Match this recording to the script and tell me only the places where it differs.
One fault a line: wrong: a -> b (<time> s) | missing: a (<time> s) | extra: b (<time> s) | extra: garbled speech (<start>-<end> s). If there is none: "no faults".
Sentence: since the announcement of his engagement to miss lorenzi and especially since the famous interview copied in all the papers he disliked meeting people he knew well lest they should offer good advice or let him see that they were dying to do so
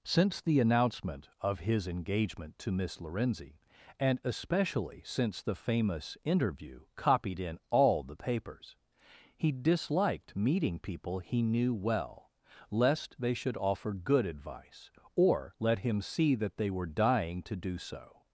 no faults